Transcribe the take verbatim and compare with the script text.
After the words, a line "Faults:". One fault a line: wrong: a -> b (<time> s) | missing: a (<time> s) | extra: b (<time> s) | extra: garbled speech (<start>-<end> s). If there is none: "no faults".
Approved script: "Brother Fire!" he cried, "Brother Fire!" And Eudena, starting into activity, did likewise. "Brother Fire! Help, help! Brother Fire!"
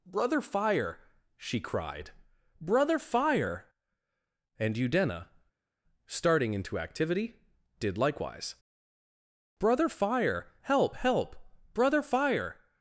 "Brother Fire!" she cried, "Brother Fire!" And Eudena, starting into activity, did likewise. "Brother Fire! Help, help! Brother Fire!"
Faults:
wrong: he -> she (1.4 s)